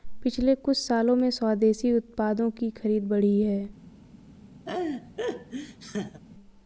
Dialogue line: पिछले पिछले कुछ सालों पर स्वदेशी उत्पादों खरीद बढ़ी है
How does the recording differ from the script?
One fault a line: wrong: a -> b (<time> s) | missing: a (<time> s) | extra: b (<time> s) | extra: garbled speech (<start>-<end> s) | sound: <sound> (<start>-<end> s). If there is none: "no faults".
missing: पिछले (0.5 s)
wrong: पर -> में (1.1 s)
extra: की (2.5 s)
sound: laugh (4.7-6.2 s)